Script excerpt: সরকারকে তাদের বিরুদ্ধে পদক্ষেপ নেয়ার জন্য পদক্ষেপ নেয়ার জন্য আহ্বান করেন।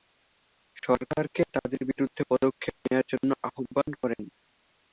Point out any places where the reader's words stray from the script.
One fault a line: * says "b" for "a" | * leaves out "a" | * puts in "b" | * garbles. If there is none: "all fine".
* leaves out "পদক্ষেপ নেয়ার জন্য"